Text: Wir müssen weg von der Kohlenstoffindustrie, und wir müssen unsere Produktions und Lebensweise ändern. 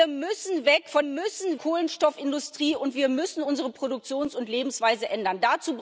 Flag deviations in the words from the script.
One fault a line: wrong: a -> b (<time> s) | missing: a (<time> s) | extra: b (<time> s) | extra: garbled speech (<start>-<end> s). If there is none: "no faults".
wrong: der -> müssen (1.0 s)